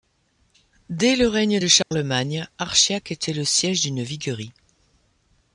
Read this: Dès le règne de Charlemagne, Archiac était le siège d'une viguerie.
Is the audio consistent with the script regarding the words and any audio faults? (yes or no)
no